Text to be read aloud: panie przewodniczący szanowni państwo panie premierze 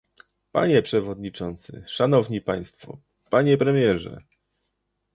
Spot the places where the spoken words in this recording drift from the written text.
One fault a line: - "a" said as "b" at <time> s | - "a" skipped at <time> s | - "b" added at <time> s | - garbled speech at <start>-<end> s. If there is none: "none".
none